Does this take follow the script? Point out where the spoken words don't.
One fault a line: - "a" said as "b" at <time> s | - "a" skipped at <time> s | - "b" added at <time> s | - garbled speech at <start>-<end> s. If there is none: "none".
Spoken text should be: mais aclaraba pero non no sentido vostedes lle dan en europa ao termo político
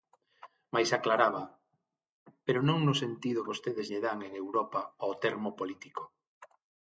none